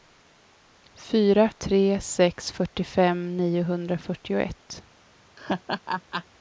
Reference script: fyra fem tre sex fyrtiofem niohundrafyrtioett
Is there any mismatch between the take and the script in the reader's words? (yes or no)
yes